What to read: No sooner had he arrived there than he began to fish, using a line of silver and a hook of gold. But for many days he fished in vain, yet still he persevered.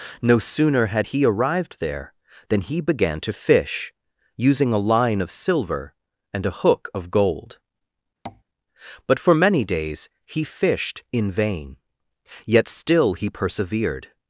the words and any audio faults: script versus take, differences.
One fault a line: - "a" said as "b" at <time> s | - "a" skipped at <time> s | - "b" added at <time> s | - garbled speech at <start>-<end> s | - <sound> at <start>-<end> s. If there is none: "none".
- tap at 8.3-8.4 s